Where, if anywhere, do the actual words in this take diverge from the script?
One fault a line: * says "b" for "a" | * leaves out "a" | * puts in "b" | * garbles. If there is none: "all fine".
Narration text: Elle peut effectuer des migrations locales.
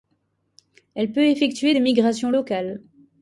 all fine